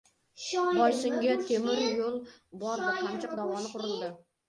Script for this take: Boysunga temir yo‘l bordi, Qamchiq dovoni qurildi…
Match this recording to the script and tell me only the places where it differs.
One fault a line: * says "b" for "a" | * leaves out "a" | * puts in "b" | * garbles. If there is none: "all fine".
all fine